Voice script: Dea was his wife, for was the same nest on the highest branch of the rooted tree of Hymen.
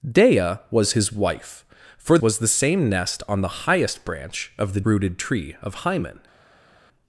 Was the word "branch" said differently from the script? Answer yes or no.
no